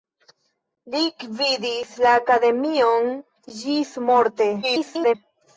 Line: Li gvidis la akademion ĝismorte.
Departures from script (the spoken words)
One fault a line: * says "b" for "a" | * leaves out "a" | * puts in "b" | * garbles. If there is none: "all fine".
* garbles